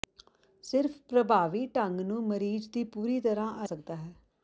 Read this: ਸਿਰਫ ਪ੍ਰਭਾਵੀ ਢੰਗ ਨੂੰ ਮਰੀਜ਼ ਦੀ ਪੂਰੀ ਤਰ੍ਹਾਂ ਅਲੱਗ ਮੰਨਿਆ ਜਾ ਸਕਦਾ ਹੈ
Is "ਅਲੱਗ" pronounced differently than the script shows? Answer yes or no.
yes